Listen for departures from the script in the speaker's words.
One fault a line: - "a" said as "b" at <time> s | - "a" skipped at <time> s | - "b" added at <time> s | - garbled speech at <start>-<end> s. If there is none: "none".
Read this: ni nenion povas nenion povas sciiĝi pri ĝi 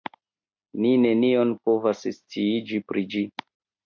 - "nenion povas" skipped at 2.0 s